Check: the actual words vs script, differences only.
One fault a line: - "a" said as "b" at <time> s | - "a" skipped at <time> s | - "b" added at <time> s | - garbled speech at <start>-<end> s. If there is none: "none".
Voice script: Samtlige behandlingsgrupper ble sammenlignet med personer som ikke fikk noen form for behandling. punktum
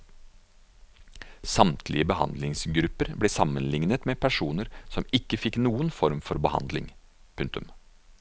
none